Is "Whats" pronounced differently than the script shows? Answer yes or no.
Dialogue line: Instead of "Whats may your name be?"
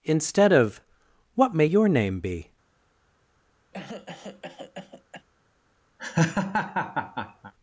yes